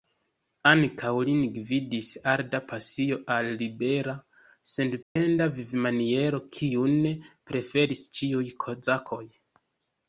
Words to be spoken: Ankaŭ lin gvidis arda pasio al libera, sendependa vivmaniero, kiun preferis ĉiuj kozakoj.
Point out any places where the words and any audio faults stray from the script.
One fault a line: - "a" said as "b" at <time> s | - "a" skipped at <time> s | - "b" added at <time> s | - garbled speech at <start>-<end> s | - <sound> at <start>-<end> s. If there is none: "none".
- dropout at 5.0-5.2 s